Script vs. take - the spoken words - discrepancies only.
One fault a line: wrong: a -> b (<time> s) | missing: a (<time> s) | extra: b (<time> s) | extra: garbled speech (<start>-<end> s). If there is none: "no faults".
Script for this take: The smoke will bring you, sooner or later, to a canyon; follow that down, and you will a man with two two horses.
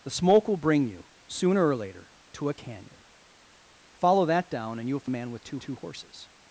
no faults